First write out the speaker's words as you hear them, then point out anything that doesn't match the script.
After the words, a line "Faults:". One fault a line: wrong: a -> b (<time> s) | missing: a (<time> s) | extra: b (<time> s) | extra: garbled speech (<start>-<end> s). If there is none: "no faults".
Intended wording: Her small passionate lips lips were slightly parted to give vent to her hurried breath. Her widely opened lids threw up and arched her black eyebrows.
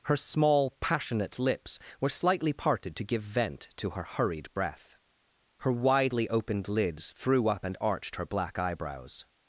Her small passionate lips were slightly parted to give vent to her hurried breath. Her widely opened lids threw up and arched her black eyebrows.
Faults:
missing: lips (1.8 s)